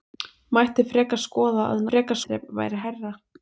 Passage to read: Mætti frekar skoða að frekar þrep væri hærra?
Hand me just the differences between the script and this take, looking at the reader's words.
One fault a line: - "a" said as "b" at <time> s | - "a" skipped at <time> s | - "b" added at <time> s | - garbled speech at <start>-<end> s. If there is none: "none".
none